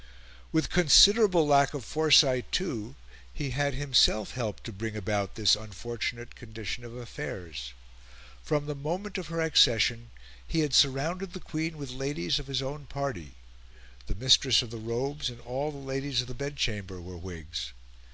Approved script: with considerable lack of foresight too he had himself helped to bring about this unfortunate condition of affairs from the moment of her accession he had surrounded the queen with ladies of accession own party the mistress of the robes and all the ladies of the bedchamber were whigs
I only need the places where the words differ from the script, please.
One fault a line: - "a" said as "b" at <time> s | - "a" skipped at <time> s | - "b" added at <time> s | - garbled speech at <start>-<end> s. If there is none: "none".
- "accession" said as "his" at 12.5 s